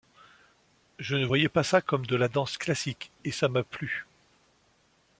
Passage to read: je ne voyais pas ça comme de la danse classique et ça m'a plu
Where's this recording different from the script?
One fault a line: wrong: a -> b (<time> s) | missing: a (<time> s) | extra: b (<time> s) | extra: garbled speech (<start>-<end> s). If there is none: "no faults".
no faults